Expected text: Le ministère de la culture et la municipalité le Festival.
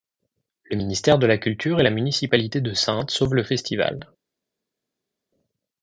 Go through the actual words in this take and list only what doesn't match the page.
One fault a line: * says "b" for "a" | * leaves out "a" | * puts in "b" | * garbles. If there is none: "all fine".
* puts in "de Saintes sauvent"